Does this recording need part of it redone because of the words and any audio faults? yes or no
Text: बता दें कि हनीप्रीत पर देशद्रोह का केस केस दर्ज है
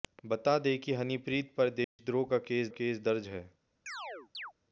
yes